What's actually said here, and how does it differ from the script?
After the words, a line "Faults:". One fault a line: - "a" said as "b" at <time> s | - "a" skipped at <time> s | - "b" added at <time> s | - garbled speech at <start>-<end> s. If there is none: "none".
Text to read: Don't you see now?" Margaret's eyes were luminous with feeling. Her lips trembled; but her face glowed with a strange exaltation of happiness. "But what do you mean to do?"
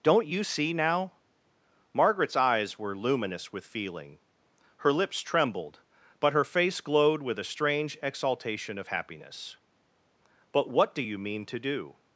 Don't you see now?" Margaret's eyes were luminous with feeling. Her lips trembled; but her face glowed with a strange exaltation of happiness. "But what do you mean to do?"
Faults:
none